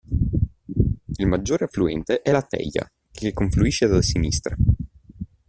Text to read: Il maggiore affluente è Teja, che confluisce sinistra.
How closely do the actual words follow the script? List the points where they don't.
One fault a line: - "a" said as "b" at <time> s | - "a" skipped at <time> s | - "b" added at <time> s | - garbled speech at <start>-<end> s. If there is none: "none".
- "la" added at 2.3 s
- "da" added at 3.9 s